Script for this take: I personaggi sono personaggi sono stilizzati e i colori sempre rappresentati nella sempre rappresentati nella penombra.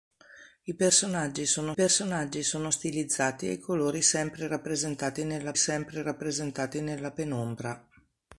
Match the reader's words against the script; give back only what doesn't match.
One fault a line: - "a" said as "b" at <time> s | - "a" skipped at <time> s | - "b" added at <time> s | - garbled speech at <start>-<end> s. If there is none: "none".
none